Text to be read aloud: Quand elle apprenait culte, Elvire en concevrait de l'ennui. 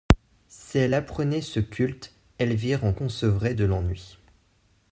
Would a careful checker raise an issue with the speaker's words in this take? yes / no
yes